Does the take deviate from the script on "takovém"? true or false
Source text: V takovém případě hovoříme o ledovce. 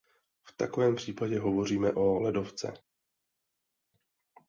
false